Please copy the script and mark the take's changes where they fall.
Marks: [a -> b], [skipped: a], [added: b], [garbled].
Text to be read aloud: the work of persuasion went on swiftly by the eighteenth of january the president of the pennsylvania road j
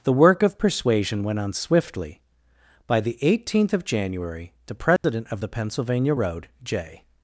the work of persuasion went on swiftly by the eighteenth of january the president of the pennsylvania road j